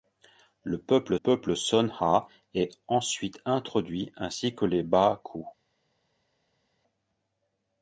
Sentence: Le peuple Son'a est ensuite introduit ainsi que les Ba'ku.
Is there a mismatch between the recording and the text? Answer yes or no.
yes